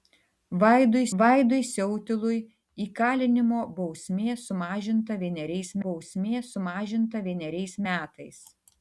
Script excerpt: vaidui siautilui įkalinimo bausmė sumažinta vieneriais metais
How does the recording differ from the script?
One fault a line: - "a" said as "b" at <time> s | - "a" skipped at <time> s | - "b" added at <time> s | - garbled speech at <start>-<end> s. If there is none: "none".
- "vaidui" added at 1.2 s
- "bausmė sumažinta vieneriais" added at 5.9 s